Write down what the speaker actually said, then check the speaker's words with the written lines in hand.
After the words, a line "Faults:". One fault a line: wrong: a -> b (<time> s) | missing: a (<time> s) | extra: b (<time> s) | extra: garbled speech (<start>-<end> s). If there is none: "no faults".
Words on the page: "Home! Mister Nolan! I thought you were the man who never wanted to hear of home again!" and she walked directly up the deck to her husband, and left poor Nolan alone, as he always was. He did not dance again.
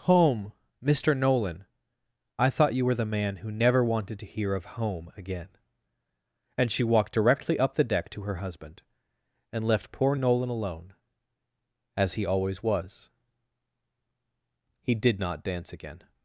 "Home! Mister Nolan! I thought you were the man who never wanted to hear of home again!" and she walked directly up the deck to her husband, and left poor Nolan alone, as he always was. He did not dance again.
Faults:
no faults